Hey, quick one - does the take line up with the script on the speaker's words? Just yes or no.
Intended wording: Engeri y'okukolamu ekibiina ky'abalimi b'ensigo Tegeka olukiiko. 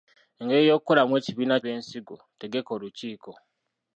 no